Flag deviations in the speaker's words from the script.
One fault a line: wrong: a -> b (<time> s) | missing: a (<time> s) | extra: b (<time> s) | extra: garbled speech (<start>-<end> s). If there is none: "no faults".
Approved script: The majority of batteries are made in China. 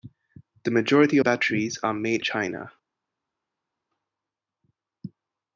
missing: of (1.2 s)
missing: in (2.2 s)